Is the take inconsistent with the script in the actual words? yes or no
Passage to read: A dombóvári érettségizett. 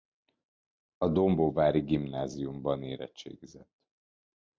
yes